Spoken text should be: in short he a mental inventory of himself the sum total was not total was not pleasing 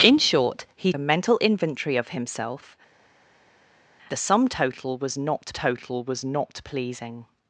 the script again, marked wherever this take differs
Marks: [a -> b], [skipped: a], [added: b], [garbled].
in short he a mental inventory of himself the sum total was not total was not pleasing